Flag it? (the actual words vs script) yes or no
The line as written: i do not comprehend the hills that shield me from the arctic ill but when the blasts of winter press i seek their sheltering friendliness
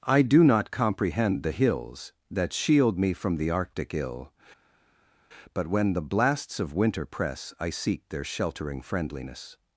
no